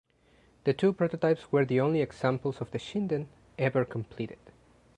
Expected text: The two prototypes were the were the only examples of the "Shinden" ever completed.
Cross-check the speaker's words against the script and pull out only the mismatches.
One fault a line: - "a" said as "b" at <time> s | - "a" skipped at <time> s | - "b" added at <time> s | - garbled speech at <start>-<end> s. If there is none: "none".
- "were the" skipped at 1.8 s